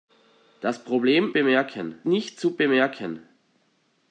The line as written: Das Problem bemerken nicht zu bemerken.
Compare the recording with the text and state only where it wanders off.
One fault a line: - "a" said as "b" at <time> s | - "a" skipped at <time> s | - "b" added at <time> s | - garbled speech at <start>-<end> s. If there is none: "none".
none